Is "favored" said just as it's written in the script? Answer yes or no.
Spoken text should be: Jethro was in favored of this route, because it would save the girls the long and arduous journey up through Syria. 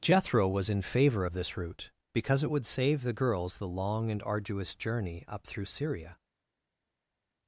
no